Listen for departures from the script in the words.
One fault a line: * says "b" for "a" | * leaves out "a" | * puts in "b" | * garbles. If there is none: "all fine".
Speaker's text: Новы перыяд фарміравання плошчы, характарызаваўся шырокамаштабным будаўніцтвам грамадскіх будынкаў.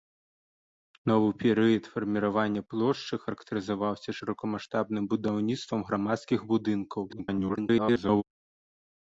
* garbles